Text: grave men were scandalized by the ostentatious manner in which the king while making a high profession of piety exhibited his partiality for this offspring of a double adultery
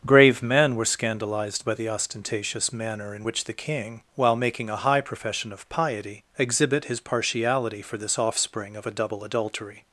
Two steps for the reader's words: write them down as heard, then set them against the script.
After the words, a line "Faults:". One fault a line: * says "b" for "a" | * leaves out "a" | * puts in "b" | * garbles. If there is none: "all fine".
grave men were scandalized by the ostentatious manner in which the king while making a high profession of piety exhibit his partiality for this offspring of a double adultery
Faults:
* says "exhibit" for "exhibited"